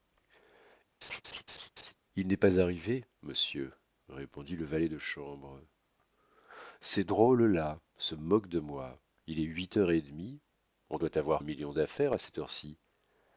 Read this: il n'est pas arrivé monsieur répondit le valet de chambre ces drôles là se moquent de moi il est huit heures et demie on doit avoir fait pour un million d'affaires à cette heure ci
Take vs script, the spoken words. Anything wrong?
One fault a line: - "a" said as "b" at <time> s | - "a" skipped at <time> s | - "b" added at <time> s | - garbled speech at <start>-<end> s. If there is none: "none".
- "fait pour" skipped at 11.4 s